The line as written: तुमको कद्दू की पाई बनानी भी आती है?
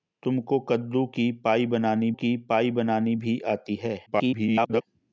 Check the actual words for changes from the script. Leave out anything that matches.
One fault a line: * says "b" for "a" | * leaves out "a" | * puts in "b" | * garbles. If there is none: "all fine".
* puts in "की पाई बनानी"
* garbles